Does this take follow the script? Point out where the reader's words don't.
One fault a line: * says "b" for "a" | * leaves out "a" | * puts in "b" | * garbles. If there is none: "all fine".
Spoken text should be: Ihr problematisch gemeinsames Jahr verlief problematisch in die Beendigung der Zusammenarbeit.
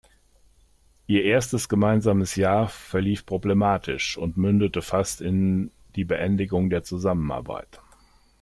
* says "erstes" for "problematisch"
* puts in "und mündete fast"